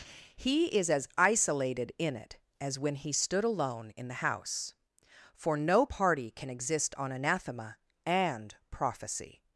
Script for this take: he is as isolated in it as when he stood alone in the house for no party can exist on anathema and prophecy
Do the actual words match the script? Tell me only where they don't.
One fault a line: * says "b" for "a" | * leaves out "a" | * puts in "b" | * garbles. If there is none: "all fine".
all fine